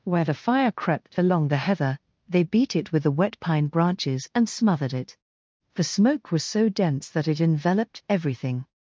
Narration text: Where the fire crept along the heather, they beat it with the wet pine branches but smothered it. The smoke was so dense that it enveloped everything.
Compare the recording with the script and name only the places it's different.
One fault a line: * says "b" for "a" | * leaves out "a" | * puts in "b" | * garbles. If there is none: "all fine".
* says "and" for "but"